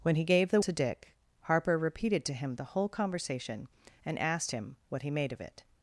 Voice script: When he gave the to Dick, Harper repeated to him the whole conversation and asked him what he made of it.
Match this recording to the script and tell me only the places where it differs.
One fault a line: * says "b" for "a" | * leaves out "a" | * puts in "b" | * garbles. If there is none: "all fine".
all fine